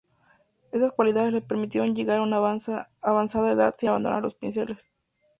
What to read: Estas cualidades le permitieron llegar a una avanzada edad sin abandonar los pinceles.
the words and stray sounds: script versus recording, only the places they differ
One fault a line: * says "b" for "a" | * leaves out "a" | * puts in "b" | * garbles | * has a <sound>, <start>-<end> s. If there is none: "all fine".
all fine